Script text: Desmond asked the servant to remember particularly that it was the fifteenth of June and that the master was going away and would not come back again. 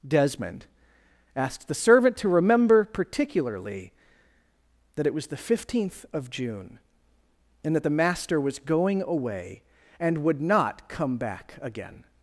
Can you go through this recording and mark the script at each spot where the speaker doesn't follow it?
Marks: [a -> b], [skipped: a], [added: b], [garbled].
Desmond asked the servant to remember particularly that it was the fifteenth of June and that the master was going away and would not come back again.